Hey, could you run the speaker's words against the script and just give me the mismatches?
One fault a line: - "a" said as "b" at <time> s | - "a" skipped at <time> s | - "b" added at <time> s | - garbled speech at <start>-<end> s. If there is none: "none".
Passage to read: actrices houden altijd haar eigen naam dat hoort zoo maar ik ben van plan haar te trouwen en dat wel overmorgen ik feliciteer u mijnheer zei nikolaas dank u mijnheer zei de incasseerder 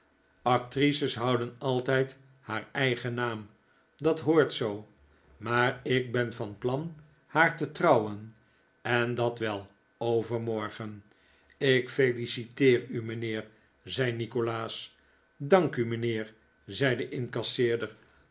none